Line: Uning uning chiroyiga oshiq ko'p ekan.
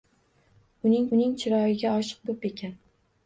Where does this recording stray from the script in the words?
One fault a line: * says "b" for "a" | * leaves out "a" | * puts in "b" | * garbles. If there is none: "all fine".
all fine